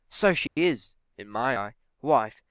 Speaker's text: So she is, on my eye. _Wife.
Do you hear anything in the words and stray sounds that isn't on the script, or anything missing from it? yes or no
yes